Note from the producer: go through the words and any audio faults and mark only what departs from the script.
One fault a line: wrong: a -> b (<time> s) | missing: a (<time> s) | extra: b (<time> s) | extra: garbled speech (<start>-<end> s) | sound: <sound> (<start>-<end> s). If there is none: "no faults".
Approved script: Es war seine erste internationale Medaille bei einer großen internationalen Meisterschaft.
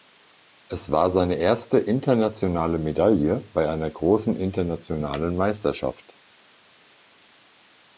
no faults